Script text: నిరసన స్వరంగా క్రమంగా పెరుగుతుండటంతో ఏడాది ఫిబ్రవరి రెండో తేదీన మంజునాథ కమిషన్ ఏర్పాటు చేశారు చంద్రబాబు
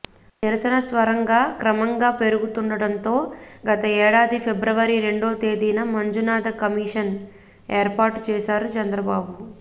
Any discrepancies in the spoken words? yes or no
yes